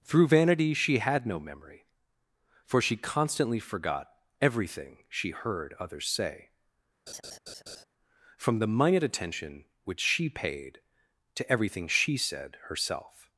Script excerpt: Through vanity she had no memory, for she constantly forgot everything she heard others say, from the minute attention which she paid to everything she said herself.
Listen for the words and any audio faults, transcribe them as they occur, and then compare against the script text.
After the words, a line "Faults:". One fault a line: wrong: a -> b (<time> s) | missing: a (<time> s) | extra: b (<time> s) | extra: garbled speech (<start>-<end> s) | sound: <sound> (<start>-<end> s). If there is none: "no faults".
Through vanity she had no memory, for she constantly forgot everything she heard others say, from the minute attention which she paid to everything she said herself.
Faults:
sound: laugh (7.1-7.8 s)